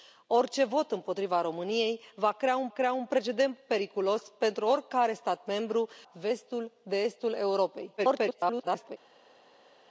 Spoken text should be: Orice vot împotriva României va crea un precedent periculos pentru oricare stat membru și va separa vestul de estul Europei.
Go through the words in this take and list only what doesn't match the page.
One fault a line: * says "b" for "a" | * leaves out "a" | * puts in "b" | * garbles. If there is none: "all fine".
* puts in "crea un"
* leaves out "și va separa"
* garbles